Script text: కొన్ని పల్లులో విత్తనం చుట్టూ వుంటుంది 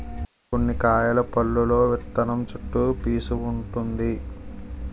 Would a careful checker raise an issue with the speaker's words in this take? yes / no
yes